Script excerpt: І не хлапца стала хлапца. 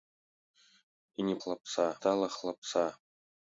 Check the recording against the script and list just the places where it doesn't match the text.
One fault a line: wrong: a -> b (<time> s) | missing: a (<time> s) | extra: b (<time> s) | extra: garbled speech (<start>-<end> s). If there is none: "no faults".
no faults